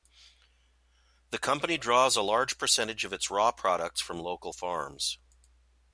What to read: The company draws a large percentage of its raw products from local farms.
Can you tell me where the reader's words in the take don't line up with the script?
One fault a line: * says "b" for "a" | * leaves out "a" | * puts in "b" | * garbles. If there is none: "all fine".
all fine